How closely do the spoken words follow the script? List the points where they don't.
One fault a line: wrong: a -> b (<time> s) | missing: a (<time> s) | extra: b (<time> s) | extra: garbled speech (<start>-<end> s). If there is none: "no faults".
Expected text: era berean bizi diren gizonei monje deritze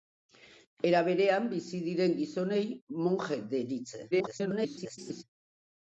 extra: garbled speech (4.1-5.2 s)